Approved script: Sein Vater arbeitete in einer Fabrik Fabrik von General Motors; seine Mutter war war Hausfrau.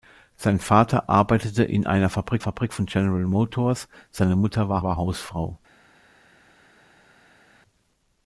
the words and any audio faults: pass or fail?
pass